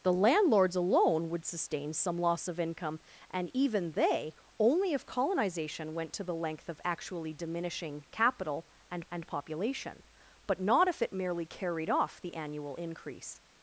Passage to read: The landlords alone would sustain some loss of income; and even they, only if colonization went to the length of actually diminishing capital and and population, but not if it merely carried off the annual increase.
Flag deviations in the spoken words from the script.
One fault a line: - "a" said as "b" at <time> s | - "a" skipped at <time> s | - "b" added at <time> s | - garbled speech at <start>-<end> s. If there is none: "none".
none